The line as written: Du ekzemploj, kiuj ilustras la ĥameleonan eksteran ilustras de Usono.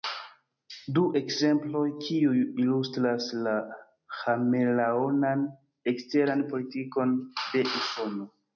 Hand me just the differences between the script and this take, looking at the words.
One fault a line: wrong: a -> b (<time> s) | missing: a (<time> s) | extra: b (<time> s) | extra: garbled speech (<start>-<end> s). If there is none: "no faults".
wrong: ilustras -> politikon (6.6 s)